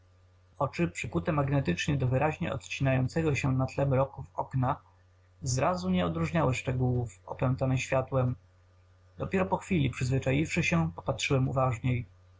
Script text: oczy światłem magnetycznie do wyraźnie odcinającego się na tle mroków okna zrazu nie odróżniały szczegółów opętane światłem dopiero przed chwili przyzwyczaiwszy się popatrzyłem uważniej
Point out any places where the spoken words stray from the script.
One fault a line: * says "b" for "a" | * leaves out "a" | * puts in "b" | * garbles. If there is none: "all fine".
* says "przykute" for "światłem"
* says "po" for "przed"